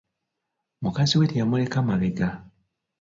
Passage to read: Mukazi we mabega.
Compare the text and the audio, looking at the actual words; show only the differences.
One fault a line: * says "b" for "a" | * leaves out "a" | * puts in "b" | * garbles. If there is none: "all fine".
* puts in "teyamuleka"